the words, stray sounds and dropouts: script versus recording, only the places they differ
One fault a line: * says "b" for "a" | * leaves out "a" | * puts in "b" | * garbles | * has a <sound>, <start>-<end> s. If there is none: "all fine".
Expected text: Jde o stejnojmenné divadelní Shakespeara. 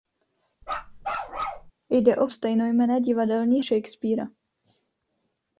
* has a bark, 0.6-1.7 s